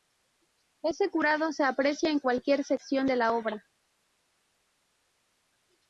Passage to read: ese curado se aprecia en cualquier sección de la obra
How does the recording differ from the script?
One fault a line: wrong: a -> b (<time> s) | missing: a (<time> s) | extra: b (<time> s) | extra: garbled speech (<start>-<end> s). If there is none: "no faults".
no faults